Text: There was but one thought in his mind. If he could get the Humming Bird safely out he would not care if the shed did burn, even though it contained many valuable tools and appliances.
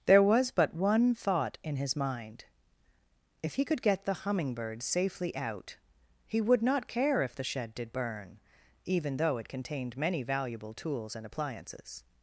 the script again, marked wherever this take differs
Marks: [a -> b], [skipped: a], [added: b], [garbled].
There was but one thought in his mind. If he could get the Humming Bird safely out he would not care if the shed did burn, even though it contained many valuable tools and appliances.